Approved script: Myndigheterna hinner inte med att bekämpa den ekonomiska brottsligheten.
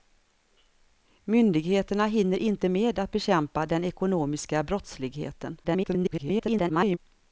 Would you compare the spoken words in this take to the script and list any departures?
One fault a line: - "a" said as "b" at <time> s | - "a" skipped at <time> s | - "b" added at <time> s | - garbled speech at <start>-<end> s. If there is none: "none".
- garbled speech at 5.6-7.0 s